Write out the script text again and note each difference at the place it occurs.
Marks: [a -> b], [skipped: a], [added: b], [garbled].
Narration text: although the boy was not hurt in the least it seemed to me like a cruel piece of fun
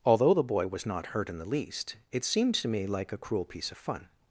although the boy was not hurt in the least it seemed to me like a cruel piece of fun